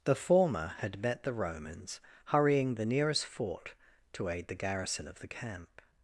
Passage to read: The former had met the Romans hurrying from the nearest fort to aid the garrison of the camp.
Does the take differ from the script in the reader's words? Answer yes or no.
yes